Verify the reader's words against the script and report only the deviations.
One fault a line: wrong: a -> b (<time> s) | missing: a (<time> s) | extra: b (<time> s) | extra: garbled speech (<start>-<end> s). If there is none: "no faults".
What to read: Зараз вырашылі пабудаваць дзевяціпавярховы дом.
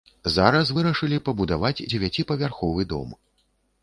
no faults